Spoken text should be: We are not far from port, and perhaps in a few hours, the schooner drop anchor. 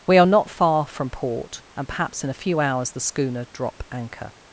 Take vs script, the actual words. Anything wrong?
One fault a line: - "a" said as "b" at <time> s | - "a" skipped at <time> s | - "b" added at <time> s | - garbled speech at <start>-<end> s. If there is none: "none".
none